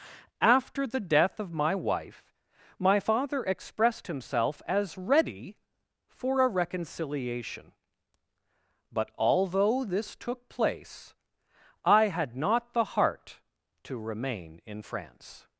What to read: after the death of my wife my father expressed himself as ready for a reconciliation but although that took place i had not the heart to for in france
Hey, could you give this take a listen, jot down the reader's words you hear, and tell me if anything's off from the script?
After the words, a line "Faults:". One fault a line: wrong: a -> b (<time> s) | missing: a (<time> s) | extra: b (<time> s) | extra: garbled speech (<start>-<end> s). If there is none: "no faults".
after the death of my wife my father expressed himself as ready for a reconciliation but although this took place i had not the heart to remain in france
Faults:
wrong: that -> this (9.8 s)
wrong: for -> remain (14.0 s)